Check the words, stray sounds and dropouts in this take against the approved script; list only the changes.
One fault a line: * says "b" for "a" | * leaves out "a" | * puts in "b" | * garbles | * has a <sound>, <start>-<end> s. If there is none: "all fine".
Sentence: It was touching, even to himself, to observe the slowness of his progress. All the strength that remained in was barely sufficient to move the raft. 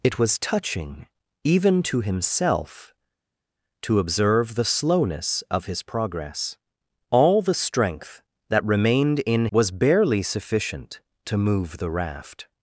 all fine